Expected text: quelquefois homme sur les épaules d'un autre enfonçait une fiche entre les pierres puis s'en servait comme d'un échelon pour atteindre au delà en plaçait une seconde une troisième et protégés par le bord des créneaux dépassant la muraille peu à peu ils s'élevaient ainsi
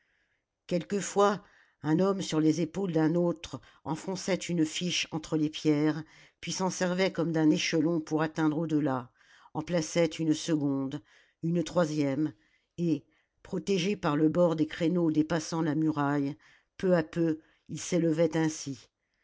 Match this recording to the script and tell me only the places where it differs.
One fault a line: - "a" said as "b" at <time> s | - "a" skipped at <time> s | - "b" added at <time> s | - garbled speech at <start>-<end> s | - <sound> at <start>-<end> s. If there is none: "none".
- "un" added at 1.8 s